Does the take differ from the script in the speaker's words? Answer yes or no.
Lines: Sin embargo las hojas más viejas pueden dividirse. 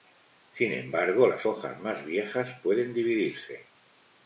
no